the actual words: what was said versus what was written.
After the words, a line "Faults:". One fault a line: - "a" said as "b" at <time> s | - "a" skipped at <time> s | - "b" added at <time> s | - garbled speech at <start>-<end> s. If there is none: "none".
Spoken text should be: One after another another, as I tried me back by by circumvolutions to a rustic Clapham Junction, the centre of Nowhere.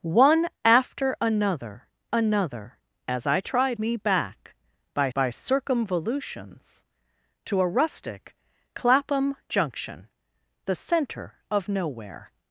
One after another another, as I tried me back by by circumvolutions to a rustic Clapham Junction, the centre of Nowhere.
Faults:
none